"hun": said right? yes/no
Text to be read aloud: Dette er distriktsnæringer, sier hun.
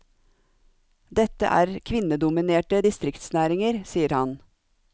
no